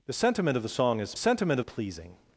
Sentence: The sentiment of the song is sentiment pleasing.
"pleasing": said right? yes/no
yes